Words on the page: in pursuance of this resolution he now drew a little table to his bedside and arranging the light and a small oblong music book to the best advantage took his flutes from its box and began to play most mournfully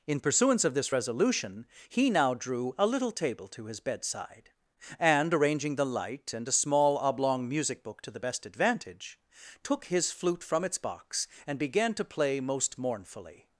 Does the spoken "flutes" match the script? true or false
false